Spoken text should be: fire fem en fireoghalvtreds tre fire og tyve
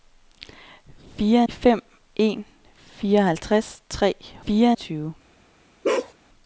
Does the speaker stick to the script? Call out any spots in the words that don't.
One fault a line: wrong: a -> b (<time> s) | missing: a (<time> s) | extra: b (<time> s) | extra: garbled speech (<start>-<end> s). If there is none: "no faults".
no faults